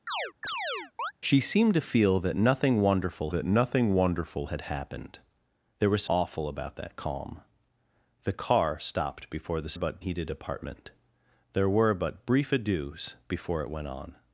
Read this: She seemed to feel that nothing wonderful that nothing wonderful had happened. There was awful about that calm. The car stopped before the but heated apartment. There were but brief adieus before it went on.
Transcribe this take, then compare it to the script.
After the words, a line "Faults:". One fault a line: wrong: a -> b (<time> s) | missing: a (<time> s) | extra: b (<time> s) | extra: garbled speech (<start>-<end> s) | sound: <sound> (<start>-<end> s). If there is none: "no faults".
She seemed to feel that nothing wonderful that nothing wonderful had happened. There was awful about that calm. The car stopped before the but heated apartment. There were but brief adieus before it went on.
Faults:
sound: chirp (0.1-1.1 s)